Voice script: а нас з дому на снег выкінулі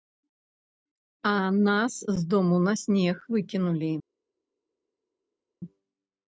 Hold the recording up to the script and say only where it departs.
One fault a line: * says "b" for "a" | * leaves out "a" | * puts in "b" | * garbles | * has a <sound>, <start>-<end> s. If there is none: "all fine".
all fine